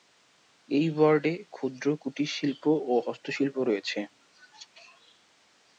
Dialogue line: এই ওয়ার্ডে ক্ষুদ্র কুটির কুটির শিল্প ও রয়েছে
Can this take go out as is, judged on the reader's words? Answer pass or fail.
fail